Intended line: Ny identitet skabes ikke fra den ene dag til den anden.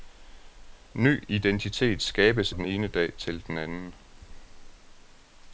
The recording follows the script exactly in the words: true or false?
false